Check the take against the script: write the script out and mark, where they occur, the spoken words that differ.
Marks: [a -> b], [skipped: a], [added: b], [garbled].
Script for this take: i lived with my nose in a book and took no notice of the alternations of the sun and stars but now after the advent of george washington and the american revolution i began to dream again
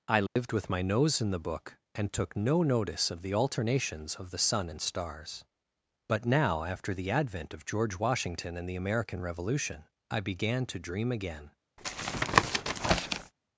i lived with my nose in [a -> the] book and took no notice of the alternations of the sun and stars but now after the advent of george washington and the american revolution i began to dream again